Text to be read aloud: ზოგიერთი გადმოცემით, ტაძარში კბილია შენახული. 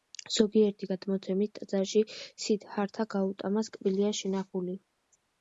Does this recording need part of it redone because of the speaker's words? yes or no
yes